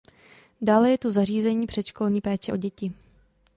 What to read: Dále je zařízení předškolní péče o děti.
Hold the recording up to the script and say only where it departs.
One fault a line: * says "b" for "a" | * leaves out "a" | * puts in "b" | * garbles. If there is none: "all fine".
* puts in "tu"